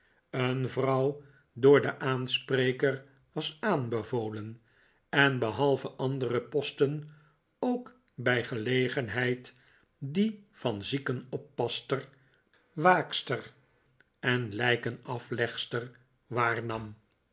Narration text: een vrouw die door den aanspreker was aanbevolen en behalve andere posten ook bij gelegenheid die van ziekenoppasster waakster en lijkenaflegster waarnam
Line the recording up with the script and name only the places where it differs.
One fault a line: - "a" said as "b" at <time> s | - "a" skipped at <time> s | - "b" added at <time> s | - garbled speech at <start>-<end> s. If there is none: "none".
- "die" skipped at 1.2 s